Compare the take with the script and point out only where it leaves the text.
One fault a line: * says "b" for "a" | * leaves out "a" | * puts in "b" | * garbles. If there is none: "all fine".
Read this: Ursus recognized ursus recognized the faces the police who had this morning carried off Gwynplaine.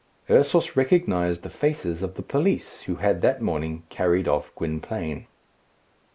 * leaves out "ursus recognized"
* puts in "of"
* says "that" for "this"